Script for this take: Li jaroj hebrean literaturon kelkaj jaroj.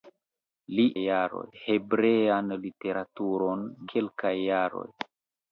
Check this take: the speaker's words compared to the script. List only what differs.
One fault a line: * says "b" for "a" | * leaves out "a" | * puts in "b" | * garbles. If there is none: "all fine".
all fine